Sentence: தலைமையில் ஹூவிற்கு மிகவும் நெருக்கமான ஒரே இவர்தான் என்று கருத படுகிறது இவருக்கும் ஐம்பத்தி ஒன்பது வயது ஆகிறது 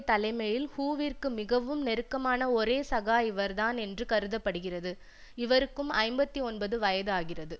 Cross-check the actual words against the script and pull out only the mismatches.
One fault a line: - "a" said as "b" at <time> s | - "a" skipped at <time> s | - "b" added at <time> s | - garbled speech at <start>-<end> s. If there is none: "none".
- "சகா" added at 2.9 s